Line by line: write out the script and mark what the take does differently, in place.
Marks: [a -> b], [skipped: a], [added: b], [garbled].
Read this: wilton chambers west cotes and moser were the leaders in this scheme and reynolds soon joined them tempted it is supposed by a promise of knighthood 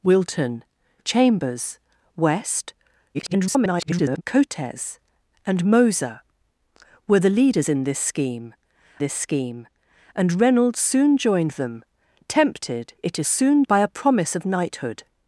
wilton chambers west [garbled] cotes and moser were the leaders in this scheme [added: this scheme] and reynolds soon joined them tempted it is [supposed -> soon] by a promise of knighthood